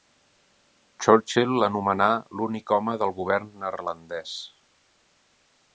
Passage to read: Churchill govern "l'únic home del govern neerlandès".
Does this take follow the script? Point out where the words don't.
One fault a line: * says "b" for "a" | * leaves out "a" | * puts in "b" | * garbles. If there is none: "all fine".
* says "l'anomenà" for "govern"